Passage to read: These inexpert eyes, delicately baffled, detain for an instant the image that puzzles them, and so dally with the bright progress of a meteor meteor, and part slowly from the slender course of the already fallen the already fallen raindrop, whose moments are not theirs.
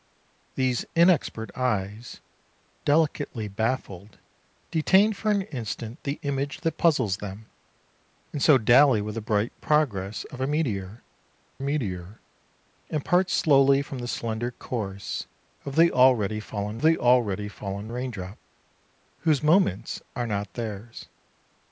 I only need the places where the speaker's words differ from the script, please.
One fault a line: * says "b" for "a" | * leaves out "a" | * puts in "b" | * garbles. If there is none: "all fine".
all fine